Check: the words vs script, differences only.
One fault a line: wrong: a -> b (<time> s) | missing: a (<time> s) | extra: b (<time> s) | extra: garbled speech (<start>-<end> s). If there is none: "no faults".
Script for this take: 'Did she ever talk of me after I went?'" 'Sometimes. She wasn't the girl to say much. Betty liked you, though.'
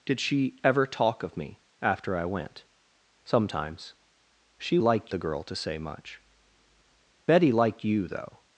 wrong: wasn't -> liked (4.8 s)